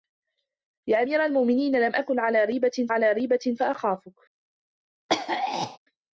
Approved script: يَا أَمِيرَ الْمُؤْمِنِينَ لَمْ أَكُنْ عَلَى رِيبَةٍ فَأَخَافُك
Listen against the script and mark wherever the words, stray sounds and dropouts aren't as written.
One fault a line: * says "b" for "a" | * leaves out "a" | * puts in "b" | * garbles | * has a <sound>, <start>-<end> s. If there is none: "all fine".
* puts in "عَلَى رِيبَةٍ"
* has a throat clearing, 5.1-5.8 s